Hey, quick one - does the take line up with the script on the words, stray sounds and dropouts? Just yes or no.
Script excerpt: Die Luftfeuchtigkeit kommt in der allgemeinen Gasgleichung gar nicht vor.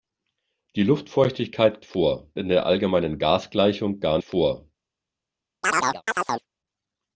no